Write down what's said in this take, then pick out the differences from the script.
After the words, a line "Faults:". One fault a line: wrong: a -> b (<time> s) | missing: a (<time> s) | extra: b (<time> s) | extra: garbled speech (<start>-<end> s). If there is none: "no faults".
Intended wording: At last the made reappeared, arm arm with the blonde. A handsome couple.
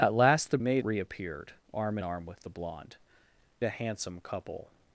At last the made reappeared, arm arm with the blonde. A handsome couple.
Faults:
no faults